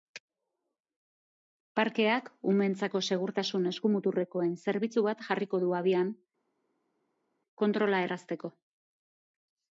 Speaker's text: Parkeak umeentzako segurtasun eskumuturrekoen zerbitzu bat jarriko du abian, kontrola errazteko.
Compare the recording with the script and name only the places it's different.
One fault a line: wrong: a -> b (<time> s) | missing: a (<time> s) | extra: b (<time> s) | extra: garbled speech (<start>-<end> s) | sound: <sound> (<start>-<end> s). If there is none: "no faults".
no faults